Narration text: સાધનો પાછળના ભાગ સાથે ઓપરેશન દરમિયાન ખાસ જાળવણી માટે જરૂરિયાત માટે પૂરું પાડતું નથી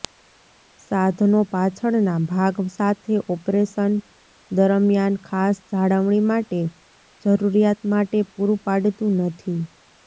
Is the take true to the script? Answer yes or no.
yes